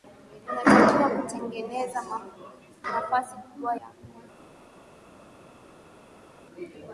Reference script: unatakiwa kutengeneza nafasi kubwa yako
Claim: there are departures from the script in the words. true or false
false